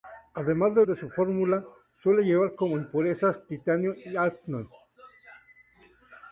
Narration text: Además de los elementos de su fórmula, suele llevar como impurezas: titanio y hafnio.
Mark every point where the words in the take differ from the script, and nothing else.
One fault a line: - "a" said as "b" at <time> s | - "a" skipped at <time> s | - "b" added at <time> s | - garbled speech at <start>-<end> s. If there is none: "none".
- "los elementos" skipped at 0.8 s